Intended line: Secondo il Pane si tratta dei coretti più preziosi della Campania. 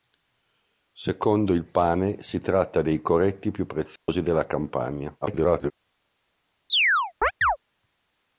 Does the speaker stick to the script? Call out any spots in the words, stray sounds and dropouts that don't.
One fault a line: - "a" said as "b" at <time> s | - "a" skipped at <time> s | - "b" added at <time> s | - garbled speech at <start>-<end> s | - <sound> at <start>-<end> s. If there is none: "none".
- dropout at 4.0-4.1 s
- garbled speech at 5.2-5.7 s
- chirp at 6.7-7.6 s